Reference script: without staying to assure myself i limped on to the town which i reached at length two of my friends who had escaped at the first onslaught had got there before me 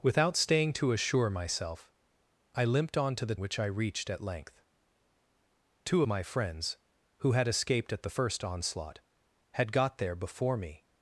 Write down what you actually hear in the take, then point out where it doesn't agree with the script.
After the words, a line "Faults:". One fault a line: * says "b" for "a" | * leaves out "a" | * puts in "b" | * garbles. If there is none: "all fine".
without staying to assure myself i limped on to the which i reached at length two my friends who had escaped at the first onslaught had got there before me
Faults:
* leaves out "town"
* leaves out "of"